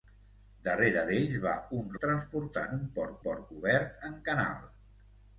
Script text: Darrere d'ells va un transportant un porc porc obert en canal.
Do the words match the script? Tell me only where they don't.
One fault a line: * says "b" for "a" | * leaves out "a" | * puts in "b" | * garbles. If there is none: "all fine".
all fine